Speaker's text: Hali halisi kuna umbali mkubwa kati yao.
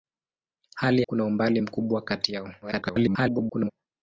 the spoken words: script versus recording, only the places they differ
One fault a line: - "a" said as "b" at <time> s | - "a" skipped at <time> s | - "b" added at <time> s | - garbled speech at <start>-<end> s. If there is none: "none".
- "halisi" skipped at 1.0 s
- garbled speech at 2.6-3.7 s